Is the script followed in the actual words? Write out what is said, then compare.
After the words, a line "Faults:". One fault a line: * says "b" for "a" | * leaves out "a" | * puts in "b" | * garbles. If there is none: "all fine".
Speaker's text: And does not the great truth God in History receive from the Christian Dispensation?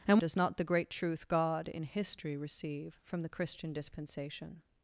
And does not the great truth God in History receive from the Christian Dispensation?
Faults:
all fine